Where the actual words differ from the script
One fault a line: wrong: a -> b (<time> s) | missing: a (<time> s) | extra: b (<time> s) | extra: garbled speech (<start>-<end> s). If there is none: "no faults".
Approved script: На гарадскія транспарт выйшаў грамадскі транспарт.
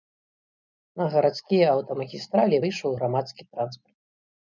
wrong: транспарт -> аўтамагістралі (1.7 s)